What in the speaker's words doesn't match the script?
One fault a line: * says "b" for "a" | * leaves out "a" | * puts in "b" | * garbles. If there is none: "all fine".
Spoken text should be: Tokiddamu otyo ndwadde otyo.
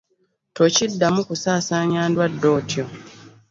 * says "kusaasaanya" for "otyo"